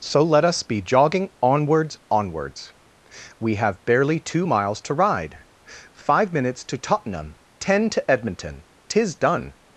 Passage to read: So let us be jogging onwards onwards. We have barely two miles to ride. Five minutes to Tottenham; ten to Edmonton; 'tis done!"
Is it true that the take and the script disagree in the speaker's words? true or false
false